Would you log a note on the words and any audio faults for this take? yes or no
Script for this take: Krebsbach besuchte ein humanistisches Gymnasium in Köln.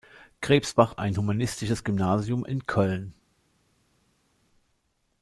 yes